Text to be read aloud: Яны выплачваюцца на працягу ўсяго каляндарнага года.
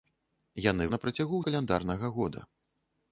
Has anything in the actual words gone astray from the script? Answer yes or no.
yes